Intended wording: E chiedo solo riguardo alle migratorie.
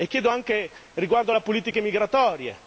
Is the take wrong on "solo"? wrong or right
wrong